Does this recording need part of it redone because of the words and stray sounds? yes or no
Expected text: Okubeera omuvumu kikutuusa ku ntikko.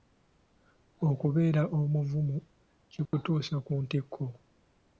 yes